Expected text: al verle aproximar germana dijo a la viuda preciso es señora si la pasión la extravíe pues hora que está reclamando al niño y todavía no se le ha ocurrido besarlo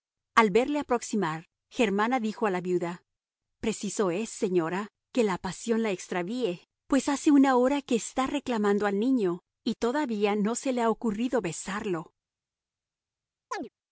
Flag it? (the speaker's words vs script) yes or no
yes